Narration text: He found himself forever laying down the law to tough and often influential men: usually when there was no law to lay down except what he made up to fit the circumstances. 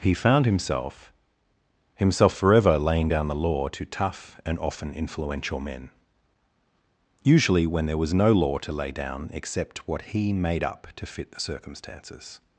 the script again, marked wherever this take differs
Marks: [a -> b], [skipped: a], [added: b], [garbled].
He found himself [added: himself] forever laying down the law to tough and often influential men: usually when there was no law to lay down except what he made up to fit the circumstances.